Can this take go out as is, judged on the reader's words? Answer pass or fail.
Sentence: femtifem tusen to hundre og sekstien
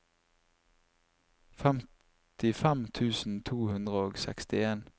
pass